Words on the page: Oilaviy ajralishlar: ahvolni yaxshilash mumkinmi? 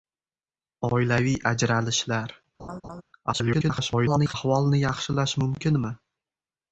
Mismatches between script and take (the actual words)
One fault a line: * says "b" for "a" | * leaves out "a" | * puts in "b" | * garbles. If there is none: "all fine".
* garbles